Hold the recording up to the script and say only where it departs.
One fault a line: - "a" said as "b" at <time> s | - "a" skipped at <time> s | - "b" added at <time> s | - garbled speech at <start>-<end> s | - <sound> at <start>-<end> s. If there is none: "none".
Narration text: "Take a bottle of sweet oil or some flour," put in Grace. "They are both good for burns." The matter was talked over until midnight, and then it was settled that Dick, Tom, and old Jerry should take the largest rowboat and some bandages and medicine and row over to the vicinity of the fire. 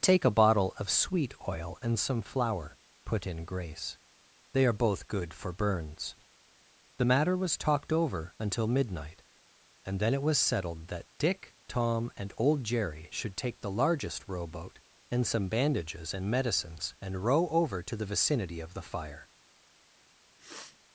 - "or" said as "and" at 1.8 s
- "medicine" said as "medicines" at 16.3 s
- sniff at 20.4-20.8 s